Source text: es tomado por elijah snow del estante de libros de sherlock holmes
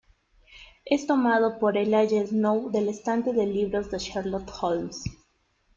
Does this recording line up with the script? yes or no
yes